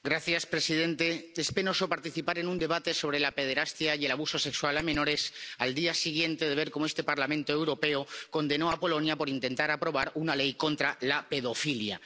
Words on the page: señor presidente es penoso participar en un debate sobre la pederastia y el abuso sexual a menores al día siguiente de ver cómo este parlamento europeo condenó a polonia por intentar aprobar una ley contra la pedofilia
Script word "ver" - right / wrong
right